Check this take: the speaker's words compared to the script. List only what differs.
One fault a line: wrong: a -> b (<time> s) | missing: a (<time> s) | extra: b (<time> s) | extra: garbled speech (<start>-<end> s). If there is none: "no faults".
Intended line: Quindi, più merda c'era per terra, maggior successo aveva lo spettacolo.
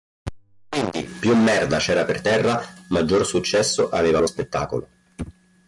no faults